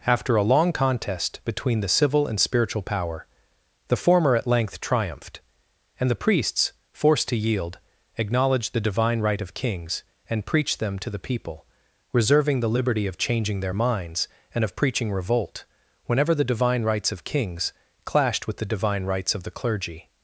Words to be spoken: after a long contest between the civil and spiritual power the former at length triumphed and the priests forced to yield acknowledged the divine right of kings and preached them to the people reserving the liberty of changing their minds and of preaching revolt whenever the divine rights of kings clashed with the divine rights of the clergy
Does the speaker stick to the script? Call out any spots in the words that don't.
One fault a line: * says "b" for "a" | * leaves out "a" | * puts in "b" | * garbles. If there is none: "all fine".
all fine